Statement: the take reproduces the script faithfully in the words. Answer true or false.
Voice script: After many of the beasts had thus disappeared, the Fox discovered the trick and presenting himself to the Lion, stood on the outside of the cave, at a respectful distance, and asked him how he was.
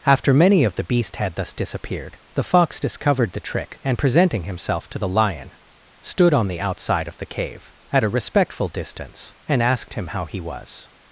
false